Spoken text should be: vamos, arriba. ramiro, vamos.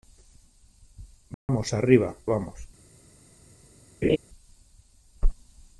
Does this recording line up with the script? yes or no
no